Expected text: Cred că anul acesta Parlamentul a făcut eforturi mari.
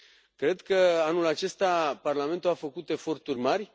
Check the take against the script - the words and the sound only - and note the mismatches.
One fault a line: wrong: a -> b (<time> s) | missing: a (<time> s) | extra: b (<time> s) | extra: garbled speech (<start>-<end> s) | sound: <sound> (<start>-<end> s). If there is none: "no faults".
no faults